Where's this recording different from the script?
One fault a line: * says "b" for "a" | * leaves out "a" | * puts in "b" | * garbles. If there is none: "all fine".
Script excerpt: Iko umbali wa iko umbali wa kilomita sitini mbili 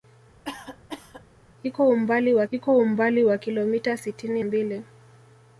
all fine